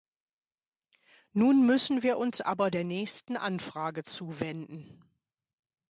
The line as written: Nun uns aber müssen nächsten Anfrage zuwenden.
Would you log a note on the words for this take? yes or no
yes